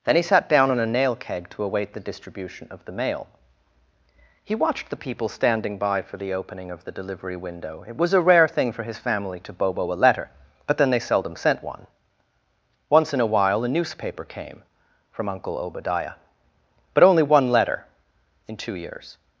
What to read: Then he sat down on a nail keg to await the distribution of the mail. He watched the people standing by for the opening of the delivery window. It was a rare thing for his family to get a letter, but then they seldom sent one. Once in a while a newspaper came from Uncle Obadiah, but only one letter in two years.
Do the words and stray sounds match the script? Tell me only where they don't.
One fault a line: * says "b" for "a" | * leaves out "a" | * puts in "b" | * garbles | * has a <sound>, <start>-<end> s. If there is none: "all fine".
* says "bobo" for "get"